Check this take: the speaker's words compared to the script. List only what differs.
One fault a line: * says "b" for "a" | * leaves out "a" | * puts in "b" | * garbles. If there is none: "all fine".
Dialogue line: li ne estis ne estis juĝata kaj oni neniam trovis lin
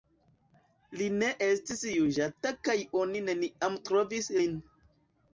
* leaves out "ne estis"